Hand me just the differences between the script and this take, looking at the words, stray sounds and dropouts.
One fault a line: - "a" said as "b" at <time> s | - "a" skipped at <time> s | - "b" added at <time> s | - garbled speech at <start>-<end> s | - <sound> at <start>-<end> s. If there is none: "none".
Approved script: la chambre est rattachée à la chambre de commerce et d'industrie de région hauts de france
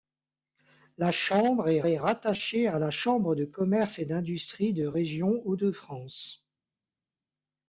- "est" added at 1.9 s